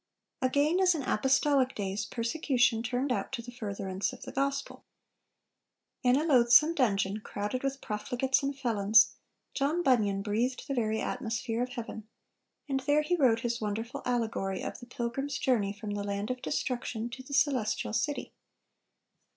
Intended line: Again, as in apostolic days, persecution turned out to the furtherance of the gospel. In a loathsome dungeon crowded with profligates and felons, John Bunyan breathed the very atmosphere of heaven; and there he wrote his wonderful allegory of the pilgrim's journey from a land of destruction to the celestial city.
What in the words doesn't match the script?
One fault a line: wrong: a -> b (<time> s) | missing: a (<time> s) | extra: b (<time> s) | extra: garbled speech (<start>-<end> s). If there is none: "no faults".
wrong: a -> the (15.9 s)